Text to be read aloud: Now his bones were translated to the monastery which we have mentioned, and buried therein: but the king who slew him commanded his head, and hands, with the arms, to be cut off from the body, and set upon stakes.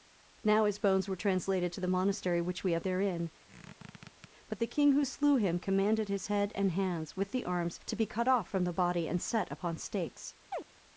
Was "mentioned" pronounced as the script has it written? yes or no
no